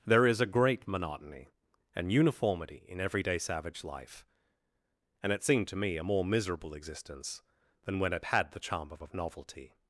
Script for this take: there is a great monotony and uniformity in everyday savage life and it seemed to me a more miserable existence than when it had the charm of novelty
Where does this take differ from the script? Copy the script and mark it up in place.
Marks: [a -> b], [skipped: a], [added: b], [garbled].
there is a great monotony and uniformity in everyday savage life and it seemed to me a more miserable existence than when it had the charm of [added: of] novelty